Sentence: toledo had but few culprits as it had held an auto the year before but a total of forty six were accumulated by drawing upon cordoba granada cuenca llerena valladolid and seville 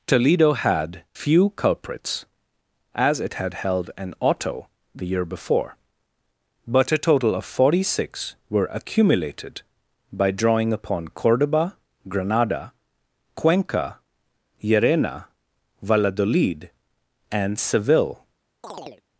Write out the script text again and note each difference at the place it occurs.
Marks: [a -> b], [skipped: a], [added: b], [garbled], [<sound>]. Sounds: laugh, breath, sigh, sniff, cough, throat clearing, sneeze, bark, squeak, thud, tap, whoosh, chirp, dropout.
toledo had [skipped: but] few culprits as it had held an auto the year before but a total of forty six were accumulated by drawing upon cordoba granada cuenca llerena valladolid and seville [chirp]